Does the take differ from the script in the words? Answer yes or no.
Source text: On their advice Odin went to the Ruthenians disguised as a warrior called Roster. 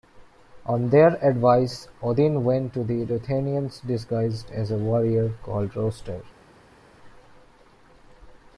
no